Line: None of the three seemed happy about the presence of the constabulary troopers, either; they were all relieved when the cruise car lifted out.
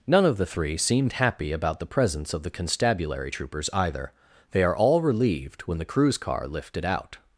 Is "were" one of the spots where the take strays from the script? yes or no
yes